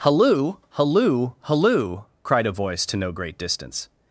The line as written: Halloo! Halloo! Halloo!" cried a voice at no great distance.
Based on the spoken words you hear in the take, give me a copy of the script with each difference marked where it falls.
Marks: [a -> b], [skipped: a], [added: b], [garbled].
Halloo! Halloo! Halloo!" cried a voice [at -> to] no great distance.